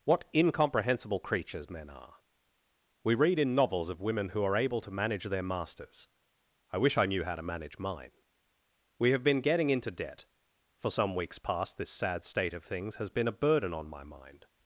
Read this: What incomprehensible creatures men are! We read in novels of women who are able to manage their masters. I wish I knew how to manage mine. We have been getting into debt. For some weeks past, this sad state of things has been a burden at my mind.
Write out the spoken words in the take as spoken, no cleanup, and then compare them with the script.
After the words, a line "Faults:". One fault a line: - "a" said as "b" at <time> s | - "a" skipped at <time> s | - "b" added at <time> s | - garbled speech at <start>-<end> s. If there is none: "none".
What incomprehensible creatures men are! We read in novels of women who are able to manage their masters. I wish I knew how to manage mine. We have been getting into debt. For some weeks past, this sad state of things has been a burden on my mind.
Faults:
- "at" said as "on" at 13.7 s